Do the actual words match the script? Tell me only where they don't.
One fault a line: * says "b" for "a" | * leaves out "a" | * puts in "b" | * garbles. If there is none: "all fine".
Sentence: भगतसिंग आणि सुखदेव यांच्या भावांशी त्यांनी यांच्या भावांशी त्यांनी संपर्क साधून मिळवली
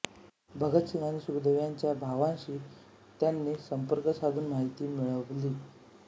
* leaves out "यांच्या भावांशी त्यांनी"
* puts in "माहिती"